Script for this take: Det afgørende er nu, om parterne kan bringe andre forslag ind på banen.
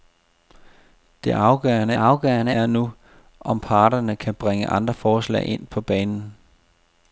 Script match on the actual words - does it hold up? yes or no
no